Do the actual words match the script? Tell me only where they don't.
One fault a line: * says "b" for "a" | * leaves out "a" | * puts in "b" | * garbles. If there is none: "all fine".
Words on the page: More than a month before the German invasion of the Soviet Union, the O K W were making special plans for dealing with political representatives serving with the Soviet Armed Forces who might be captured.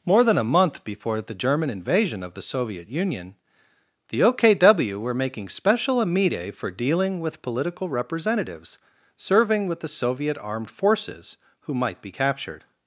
* says "amide" for "plans"